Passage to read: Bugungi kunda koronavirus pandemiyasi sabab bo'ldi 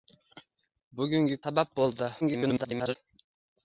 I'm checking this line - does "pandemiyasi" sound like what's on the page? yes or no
no